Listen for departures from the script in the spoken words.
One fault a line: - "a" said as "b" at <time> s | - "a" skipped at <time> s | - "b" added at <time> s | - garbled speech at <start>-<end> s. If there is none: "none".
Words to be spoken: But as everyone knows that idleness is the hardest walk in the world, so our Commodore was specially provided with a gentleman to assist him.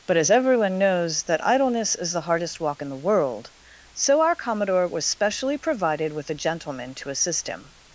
none